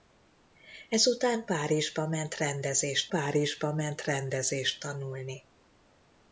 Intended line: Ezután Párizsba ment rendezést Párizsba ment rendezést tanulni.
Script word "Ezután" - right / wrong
right